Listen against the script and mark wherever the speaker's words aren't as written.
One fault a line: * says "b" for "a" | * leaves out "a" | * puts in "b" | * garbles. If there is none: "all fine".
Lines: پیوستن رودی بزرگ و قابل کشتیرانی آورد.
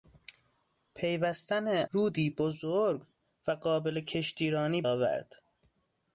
all fine